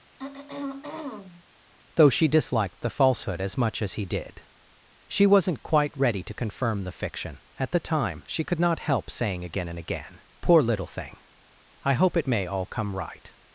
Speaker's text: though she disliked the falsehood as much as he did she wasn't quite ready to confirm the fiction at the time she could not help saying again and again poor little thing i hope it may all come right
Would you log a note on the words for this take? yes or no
no